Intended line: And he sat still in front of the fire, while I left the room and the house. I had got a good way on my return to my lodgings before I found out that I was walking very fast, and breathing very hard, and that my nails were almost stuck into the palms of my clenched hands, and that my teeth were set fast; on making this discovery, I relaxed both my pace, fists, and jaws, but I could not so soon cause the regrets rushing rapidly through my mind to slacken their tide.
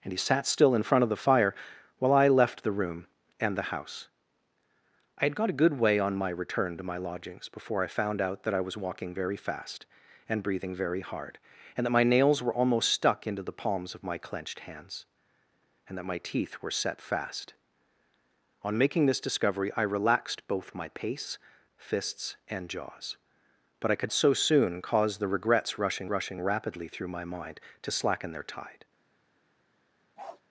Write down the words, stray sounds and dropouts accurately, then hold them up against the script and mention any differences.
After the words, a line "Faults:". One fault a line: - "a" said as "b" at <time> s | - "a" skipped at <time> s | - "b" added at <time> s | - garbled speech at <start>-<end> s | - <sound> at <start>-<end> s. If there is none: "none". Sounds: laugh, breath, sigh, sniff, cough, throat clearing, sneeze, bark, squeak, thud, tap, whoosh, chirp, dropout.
And he sat still in front of the fire, while I left the room and the house. I had got a good way on my return to my lodgings before I found out that I was walking very fast, and breathing very hard, and that my nails were almost stuck into the palms of my clenched hands, and that my teeth were set fast; on making this discovery, I relaxed both my pace, fists, and jaws, but I could so soon cause the regrets rushing rushing rapidly through my mind to slacken their tide.
Faults:
- "not" skipped at 24.1 s
- "rushing" added at 26.1 s
- bark at 30.2-30.4 s